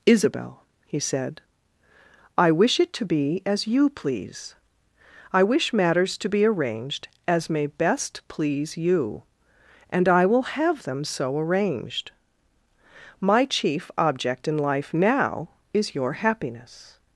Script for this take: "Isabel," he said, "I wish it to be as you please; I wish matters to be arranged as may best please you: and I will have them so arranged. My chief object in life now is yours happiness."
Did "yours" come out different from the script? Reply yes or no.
yes